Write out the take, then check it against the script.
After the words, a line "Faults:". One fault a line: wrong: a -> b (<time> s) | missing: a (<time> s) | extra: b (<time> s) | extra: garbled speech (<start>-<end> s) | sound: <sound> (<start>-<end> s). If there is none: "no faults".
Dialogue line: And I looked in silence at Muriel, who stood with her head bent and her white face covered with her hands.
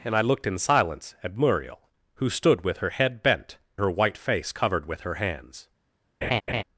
And I looked in silence at Muriel, who stood with her head bent her white face covered with her hands.
Faults:
missing: and (3.6 s)
sound: laugh (6.2-6.6 s)